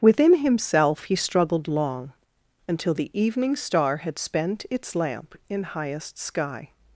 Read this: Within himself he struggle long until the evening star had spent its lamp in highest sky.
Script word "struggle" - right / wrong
wrong